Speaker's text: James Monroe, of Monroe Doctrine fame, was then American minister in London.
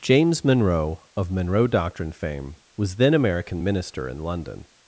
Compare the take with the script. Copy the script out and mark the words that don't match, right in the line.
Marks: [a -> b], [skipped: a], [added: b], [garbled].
James Monroe, of Monroe Doctrine fame, was then American minister in London.